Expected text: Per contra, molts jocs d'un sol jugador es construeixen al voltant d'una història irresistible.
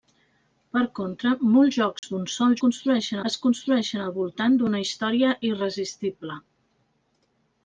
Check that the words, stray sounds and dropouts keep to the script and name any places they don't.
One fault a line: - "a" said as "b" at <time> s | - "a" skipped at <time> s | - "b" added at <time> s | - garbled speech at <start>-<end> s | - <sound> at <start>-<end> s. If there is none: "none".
- dropout at 2.0-2.0 s
- "jugador" said as "construeixen" at 2.6 s